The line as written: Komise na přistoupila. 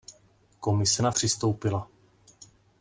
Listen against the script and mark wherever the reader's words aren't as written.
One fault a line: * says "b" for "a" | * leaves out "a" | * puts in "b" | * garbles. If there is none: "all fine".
all fine